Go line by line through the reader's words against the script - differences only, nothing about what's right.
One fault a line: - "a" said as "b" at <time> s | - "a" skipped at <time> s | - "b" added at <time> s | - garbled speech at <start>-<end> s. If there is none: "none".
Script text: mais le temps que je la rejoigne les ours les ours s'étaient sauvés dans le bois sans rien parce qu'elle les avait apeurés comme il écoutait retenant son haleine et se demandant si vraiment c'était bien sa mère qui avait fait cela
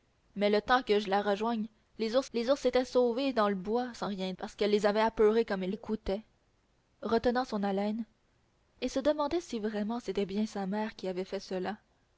none